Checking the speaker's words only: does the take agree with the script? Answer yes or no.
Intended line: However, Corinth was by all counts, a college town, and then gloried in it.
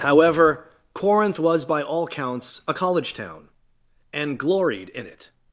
no